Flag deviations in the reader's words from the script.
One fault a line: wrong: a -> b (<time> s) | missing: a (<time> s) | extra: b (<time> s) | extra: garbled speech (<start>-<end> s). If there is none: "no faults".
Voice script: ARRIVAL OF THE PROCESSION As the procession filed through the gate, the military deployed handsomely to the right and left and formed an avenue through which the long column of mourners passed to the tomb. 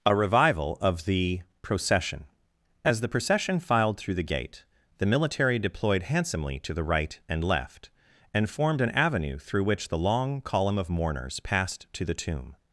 wrong: ARRIVAL -> A revival (0.0 s)